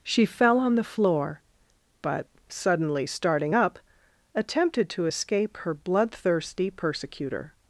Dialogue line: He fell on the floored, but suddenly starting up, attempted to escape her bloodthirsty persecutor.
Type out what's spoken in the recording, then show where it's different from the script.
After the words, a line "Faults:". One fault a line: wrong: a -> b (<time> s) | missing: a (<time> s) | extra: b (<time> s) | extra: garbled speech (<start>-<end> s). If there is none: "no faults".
She fell on the floor, but suddenly starting up, attempted to escape her bloodthirsty persecutor.
Faults:
wrong: He -> She (0.0 s)
wrong: floored -> floor (0.8 s)